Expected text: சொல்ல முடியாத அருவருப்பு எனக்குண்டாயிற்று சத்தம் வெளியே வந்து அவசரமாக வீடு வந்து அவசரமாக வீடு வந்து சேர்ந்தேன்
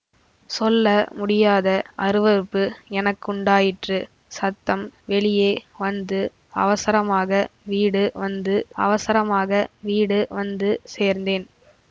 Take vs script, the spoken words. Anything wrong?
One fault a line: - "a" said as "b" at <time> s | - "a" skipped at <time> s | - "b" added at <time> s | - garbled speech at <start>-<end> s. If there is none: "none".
none